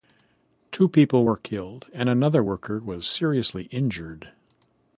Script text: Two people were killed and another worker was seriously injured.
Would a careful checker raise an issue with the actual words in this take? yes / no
no